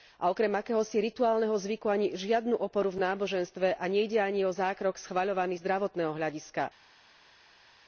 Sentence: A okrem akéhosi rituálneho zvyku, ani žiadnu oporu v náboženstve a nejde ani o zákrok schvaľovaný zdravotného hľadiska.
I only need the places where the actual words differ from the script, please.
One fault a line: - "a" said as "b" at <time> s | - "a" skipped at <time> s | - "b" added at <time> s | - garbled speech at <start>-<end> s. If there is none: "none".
none